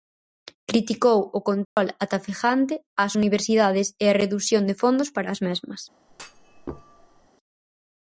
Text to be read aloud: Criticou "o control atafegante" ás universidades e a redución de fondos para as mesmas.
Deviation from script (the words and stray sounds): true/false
true